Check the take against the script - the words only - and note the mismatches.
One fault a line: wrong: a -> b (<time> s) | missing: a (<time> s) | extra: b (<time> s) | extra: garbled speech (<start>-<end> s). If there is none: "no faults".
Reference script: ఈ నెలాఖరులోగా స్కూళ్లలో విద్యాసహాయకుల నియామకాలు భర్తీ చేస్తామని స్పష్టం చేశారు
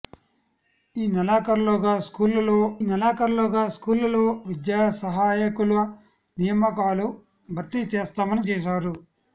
extra: నెలాఖరులోగా స్కూళ్లలో (2.8 s)
missing: స్పష్టం (8.4 s)